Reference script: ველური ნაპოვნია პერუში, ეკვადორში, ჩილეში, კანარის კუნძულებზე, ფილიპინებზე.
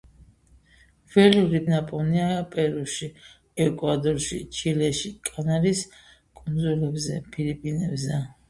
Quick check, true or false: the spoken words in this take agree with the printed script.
true